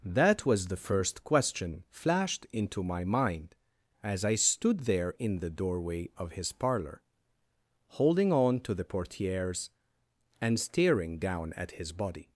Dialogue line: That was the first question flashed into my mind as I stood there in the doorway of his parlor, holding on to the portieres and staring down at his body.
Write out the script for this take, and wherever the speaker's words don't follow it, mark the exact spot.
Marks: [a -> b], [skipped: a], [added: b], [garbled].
That was the first question flashed into my mind as I stood there in the doorway of his parlor, holding on to the portieres and staring down at his body.